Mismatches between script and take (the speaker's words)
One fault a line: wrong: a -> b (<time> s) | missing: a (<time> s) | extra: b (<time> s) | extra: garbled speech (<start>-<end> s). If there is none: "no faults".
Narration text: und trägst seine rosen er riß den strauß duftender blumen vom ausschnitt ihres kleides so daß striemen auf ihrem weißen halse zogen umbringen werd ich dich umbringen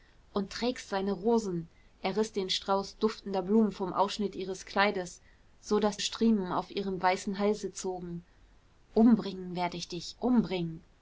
no faults